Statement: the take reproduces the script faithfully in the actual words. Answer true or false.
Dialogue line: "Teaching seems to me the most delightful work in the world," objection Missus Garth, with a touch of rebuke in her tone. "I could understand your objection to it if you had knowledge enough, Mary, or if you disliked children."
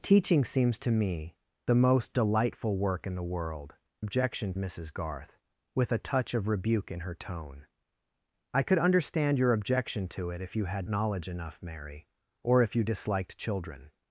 true